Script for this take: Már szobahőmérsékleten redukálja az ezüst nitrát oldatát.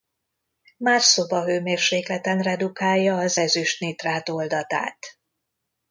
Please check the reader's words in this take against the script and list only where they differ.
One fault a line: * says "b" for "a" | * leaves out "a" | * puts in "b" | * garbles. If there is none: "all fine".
all fine